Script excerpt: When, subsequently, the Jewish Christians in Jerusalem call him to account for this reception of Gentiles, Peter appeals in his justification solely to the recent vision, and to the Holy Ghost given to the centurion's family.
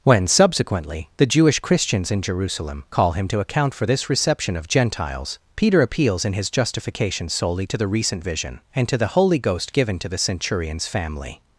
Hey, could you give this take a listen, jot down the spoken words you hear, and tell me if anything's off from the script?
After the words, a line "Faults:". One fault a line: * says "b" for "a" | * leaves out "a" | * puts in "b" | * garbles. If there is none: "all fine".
When, subsequently, the Jewish Christians in Jerusalem call him to account for this reception of Gentiles, Peter appeals in his justification solely to the recent vision, and to the Holy Ghost given to the centurion's family.
Faults:
all fine